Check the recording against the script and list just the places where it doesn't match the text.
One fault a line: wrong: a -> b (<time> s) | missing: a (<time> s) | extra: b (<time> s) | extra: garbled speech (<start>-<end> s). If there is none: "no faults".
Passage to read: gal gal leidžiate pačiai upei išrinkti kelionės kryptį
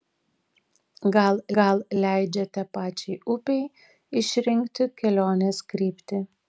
no faults